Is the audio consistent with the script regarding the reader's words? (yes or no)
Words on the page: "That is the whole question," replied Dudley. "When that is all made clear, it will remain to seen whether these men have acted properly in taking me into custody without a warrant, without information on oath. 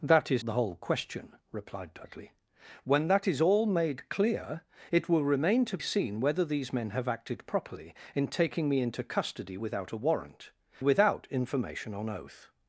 yes